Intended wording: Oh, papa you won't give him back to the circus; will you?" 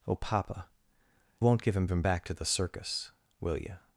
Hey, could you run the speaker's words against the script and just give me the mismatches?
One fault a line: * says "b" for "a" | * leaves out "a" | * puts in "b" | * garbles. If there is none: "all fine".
* leaves out "you"
* puts in "him"